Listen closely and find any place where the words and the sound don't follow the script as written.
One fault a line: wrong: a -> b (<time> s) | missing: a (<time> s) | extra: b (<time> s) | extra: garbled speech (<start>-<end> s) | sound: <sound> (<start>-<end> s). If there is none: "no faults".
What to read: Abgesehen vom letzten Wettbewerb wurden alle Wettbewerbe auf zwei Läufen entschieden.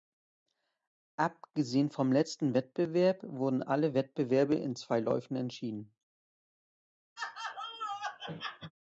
wrong: auf -> in (4.5 s)
sound: laugh (7.2-8.7 s)